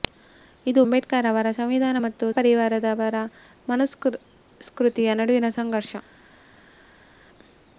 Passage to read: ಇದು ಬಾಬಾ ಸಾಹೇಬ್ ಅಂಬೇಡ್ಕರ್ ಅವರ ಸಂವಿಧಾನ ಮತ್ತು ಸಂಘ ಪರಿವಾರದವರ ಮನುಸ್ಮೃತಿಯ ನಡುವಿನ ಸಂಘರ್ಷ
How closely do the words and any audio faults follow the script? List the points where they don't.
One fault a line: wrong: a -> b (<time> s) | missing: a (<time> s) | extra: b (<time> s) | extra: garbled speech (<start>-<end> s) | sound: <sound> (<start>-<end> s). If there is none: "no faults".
missing: ಬಾಬಾ ಸಾಹೇಬ್ (0.8 s)
missing: ಸಂಘ (2.3 s)